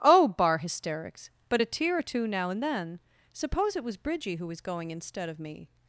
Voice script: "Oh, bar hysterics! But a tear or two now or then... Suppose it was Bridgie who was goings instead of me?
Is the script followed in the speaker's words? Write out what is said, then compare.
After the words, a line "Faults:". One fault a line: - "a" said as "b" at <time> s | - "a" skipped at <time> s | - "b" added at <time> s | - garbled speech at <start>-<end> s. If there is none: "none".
"Oh, bar hysterics! But a tear or two now and then... Suppose it was Bridgie who was going instead of me?
Faults:
- "or" said as "and" at 2.5 s
- "goings" said as "going" at 4.6 s